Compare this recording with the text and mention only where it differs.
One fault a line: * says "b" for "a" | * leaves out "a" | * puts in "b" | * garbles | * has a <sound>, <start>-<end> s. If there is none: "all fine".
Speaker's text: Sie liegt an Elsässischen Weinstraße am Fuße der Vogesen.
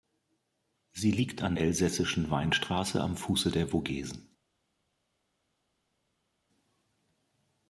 all fine